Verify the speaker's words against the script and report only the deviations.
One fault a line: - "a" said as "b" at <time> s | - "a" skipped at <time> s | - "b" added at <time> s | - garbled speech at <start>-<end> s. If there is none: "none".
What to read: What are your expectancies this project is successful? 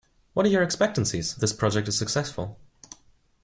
none